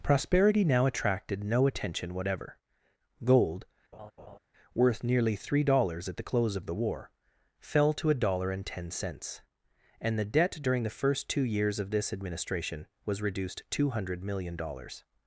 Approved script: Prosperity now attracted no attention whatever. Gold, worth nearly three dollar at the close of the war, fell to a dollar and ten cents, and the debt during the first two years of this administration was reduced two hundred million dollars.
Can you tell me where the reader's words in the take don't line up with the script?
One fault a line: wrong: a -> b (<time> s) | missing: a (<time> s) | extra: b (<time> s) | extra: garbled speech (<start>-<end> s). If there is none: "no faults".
wrong: dollar -> dollars (5.6 s)